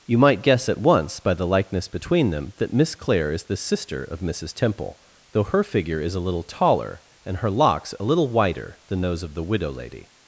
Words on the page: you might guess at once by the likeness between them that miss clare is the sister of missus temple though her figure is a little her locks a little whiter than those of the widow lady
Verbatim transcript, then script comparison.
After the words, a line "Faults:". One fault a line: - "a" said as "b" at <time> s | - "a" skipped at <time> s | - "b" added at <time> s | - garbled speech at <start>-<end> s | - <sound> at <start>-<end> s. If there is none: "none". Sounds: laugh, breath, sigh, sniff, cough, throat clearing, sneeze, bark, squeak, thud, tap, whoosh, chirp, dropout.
you might guess at once by the likeness between them that miss clare is the sister of missus temple though her figure is a little taller and her locks a little whiter than those of the widow lady
Faults:
- "taller and" added at 6.4 s